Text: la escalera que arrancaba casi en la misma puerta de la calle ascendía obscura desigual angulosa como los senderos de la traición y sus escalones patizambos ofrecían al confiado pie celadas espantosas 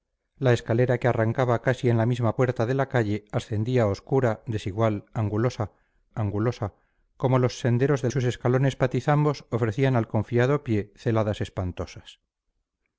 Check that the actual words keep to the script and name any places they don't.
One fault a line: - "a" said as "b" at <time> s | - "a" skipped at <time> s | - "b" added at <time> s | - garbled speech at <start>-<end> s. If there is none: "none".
- "angulosa" added at 6.1 s
- "la traición y" skipped at 8.1 s